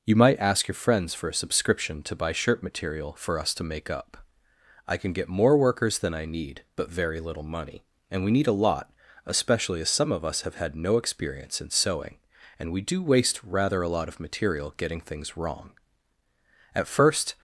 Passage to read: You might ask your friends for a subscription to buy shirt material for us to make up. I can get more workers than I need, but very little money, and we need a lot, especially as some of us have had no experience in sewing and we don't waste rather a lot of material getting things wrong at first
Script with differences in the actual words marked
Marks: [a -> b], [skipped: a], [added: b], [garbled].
You might ask your friends for a subscription to buy shirt material for us to make up. I can get more workers than I need, but very little money, and we need a lot, especially as some of us have had no experience in sewing and we [don't -> do] waste rather a lot of material getting things wrong at first